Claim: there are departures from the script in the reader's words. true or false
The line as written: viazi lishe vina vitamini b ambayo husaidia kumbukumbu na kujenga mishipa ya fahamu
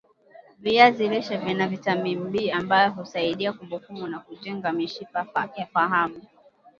false